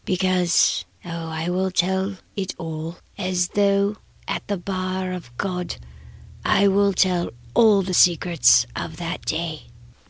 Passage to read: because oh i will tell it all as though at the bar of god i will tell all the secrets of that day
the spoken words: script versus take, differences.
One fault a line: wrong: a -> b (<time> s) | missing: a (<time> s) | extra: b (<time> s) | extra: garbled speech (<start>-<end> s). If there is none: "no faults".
no faults